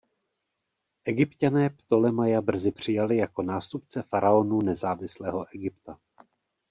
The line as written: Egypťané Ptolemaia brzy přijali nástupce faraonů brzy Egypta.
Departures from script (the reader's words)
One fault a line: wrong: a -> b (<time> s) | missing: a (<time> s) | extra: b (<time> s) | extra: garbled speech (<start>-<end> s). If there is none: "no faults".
extra: jako (3.2 s)
wrong: brzy -> nezávislého (4.6 s)